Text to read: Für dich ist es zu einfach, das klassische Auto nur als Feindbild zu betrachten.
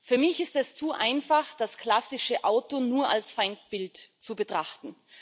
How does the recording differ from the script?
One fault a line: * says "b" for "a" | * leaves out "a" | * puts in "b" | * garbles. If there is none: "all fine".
* says "mich" for "dich"